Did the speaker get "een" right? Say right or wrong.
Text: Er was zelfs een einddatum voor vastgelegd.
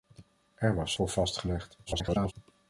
wrong